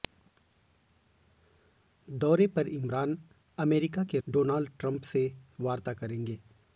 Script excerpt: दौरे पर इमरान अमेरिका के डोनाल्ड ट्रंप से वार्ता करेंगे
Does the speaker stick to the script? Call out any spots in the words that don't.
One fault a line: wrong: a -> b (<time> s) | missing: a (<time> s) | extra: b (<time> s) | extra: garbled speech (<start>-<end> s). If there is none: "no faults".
no faults